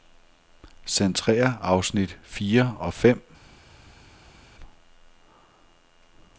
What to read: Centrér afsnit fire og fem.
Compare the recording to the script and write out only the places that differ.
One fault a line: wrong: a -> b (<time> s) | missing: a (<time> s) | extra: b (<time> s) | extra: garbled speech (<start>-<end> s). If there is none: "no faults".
no faults